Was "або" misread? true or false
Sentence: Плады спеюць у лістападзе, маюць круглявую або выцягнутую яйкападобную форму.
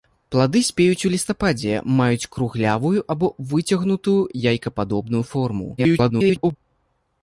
false